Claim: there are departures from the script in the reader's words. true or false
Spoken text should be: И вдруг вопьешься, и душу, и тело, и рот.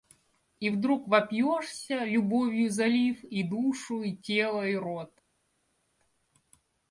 true